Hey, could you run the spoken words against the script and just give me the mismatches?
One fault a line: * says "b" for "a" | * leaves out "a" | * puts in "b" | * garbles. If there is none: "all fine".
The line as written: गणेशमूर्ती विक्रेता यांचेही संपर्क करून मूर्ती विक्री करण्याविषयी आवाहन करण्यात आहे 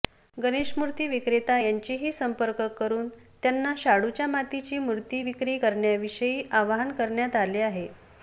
* puts in "त्यांना शाडूच्या मातीची"
* puts in "आले"